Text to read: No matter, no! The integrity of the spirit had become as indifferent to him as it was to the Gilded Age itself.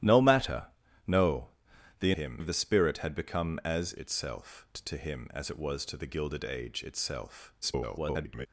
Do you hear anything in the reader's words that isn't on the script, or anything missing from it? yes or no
yes